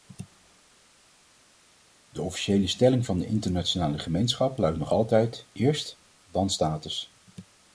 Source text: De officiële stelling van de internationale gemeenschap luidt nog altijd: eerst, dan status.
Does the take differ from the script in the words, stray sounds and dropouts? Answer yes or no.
no